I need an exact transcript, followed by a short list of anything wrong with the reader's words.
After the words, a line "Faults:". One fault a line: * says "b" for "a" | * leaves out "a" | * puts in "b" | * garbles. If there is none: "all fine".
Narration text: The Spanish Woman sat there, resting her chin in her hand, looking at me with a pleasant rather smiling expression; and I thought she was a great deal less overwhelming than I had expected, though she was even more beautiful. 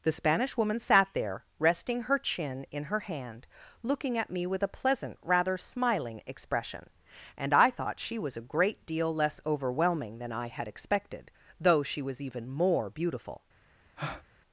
The Spanish Woman sat there, resting her chin in her hand, looking at me with a pleasant rather smiling expression; and I thought she was a great deal less overwhelming than I had expected, though she was even more beautiful.
Faults:
all fine